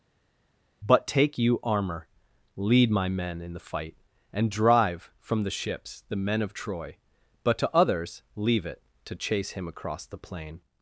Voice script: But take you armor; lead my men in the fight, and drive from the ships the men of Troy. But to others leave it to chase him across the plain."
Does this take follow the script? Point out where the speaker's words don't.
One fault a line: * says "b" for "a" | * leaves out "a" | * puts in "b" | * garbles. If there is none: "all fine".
all fine